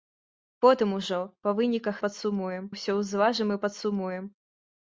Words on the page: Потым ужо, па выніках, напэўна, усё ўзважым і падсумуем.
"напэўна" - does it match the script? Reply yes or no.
no